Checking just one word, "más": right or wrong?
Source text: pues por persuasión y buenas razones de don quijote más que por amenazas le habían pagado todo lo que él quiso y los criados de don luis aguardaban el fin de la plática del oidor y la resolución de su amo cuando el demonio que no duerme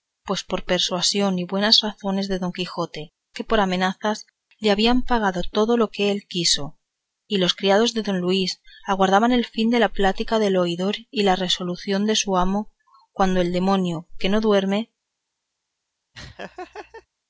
wrong